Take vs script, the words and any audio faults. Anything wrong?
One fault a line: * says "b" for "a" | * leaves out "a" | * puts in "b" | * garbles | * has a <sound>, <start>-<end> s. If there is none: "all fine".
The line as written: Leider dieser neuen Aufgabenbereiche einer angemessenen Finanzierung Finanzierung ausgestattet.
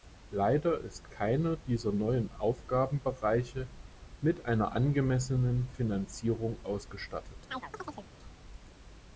* puts in "ist keiner"
* puts in "mit"
* leaves out "Finanzierung"
* has a chirp, 7.5-8.1 s